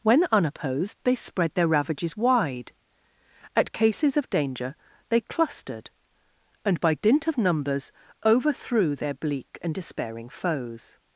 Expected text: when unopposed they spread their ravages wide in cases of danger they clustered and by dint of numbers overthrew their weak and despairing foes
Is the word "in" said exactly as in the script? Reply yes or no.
no